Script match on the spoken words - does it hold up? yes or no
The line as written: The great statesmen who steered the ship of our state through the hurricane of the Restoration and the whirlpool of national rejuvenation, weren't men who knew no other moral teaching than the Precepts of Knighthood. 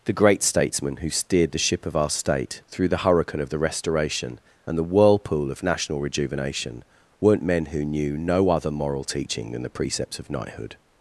yes